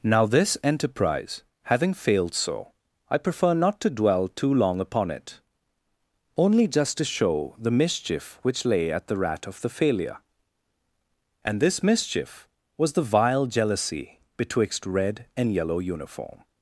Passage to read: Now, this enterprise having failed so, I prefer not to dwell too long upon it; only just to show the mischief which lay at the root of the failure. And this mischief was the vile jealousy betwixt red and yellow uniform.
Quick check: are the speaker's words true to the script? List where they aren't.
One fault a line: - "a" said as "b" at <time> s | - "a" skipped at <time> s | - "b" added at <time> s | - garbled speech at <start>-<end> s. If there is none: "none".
- "root" said as "rat" at 9.2 s